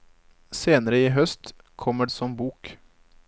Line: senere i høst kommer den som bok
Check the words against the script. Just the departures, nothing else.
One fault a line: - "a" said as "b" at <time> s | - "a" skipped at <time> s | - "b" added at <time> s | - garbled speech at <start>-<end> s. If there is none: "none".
- "den" skipped at 2.1 s